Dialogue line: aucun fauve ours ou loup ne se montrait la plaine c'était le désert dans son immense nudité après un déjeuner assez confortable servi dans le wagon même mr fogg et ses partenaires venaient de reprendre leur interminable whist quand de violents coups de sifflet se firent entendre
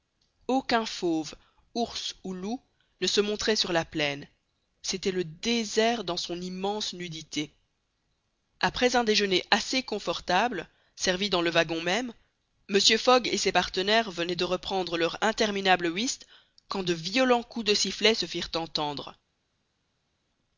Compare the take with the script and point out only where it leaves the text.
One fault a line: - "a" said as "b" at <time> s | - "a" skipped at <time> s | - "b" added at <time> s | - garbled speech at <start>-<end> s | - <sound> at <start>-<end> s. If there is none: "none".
- "sur" added at 3.5 s